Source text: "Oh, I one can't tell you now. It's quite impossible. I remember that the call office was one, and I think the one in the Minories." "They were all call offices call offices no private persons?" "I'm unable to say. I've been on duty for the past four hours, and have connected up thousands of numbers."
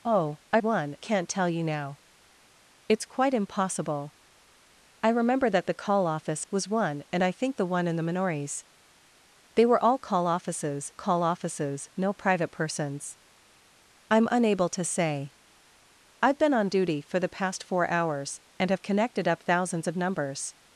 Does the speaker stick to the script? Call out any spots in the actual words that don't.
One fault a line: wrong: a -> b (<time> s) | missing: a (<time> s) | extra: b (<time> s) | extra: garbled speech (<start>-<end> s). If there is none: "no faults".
no faults